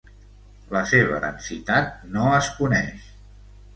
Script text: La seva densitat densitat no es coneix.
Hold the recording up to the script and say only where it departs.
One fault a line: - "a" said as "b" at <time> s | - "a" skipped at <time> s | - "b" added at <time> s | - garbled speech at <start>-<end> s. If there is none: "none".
- "densitat" skipped at 2.0 s